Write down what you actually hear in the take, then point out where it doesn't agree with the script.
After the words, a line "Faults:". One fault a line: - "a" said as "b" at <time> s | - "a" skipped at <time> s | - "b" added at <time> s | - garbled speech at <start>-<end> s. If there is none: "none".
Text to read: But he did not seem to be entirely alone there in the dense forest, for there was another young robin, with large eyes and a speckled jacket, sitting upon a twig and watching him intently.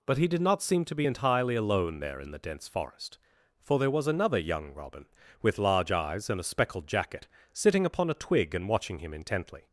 But he did not seem to be entirely alone there in the dense forest, for there was another young robin, with large eyes and a speckled jacket, sitting upon a twig and watching him intently.
Faults:
none